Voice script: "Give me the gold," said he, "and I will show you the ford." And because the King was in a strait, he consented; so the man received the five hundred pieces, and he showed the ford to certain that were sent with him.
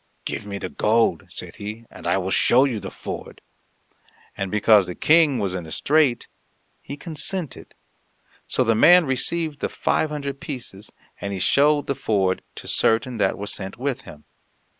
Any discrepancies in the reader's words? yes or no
no